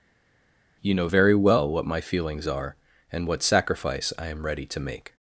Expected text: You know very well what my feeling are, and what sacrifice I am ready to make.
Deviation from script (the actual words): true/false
true